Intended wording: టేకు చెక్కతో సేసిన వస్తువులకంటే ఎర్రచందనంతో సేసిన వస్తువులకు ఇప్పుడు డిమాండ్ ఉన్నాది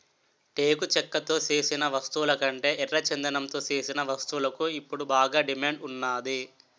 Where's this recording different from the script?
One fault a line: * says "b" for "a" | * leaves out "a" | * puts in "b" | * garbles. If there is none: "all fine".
* puts in "బాగా"